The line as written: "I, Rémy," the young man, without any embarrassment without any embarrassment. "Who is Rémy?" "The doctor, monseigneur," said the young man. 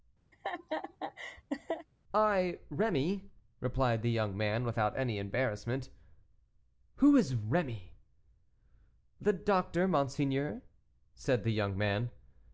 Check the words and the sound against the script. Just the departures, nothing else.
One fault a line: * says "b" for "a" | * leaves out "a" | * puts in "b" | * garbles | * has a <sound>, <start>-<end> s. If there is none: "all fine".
* has a laugh, 0.3-1.9 s
* puts in "replied"
* leaves out "without any embarrassment"